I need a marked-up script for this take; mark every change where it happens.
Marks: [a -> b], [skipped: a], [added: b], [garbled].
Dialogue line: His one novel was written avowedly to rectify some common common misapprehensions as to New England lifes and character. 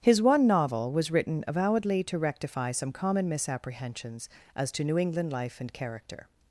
His one novel was written avowedly to rectify some common [skipped: common] misapprehensions as to New England [lifes -> life] and character.